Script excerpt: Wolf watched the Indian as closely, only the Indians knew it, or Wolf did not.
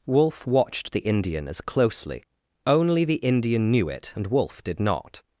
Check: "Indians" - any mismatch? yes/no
yes